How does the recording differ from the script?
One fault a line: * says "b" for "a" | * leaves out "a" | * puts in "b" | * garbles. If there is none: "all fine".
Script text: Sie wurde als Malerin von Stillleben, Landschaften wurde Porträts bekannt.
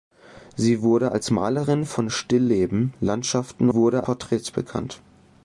all fine